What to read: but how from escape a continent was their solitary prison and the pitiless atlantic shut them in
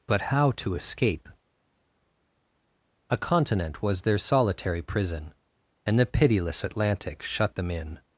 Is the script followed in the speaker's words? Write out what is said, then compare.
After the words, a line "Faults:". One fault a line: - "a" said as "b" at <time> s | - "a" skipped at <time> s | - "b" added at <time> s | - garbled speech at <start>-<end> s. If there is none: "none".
but how to escape a continent was their solitary prison and the pitiless atlantic shut them in
Faults:
- "from" said as "to" at 0.6 s